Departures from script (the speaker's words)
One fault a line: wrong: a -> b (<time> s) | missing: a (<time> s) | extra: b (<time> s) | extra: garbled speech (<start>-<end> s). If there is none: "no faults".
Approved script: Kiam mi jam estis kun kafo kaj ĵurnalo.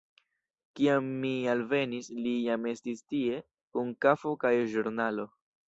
extra: alvenis li (1.5 s)
extra: tie (3.1 s)